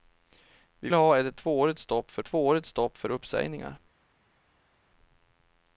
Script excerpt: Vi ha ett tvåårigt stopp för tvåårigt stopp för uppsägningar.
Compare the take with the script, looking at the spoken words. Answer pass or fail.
pass